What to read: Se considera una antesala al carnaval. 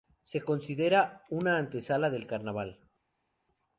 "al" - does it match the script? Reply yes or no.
no